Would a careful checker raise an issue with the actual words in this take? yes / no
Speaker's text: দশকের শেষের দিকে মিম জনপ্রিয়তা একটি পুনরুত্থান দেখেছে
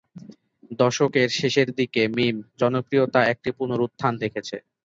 no